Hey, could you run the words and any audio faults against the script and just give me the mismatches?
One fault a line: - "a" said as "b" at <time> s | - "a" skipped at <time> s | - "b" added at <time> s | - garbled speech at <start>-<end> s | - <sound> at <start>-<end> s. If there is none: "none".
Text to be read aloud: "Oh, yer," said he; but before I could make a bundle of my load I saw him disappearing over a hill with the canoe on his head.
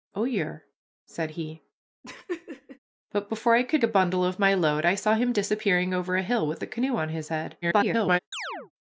- laugh at 2.0-2.8 s
- "make" skipped at 3.8 s
- garbled speech at 7.6-8.2 s
- chirp at 8.3-8.7 s